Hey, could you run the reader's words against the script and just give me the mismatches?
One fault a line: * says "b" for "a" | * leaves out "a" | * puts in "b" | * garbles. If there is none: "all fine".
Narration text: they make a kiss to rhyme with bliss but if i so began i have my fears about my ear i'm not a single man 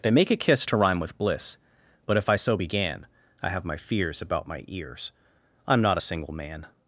* says "ears" for "ear"